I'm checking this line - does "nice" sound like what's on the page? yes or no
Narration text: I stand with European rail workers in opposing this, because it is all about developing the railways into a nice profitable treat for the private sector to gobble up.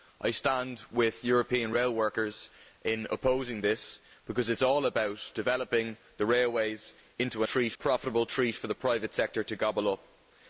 no